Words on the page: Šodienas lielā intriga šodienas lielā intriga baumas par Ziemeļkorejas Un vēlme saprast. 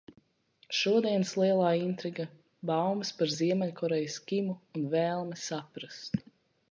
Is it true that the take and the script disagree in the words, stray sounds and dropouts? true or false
true